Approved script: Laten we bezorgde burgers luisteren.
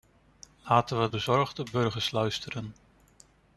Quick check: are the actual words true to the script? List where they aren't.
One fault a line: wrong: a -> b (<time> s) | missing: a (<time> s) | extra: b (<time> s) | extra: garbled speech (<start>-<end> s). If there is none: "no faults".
no faults